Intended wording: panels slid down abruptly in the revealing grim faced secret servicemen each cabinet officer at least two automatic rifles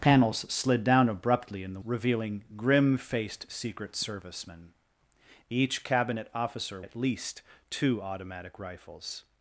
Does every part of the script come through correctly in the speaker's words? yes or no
yes